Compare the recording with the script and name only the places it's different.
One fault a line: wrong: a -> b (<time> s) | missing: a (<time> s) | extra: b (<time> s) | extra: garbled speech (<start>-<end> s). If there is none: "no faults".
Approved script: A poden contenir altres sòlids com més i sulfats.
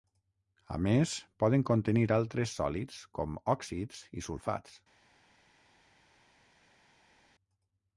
extra: més (0.8 s)
wrong: més -> òxids (3.6 s)